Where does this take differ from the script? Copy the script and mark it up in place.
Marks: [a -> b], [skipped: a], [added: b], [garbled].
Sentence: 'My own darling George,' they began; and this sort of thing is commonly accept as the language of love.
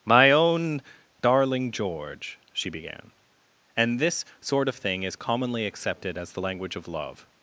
'My own darling George,' [they -> she] began; and this sort of thing is commonly [accept -> accepted] as the language of love.